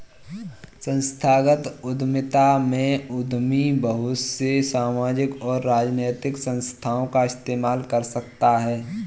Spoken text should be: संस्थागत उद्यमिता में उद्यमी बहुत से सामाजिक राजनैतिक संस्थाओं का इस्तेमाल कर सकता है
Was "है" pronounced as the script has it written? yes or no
yes